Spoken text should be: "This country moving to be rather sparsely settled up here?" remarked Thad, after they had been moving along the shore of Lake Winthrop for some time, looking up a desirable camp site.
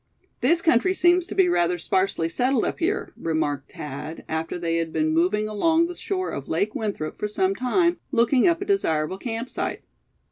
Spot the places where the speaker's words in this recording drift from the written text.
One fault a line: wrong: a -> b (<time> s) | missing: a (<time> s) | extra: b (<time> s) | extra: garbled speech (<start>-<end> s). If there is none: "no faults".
wrong: moving -> seems (0.9 s)